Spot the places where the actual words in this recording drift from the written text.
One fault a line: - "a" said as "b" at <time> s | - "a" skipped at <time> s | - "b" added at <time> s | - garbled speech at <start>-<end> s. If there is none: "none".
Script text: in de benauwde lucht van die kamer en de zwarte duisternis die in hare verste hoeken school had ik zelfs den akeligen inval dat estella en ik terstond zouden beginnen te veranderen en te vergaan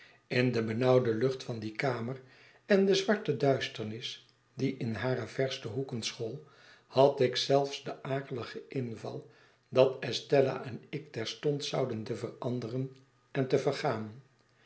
- "beginnen" skipped at 12.0 s